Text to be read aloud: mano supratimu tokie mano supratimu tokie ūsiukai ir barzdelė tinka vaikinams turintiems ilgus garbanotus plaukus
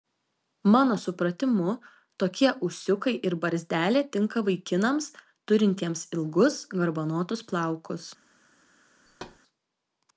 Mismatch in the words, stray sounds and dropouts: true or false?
true